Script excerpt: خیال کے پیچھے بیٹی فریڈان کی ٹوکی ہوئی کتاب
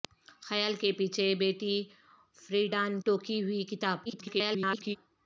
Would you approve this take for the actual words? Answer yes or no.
no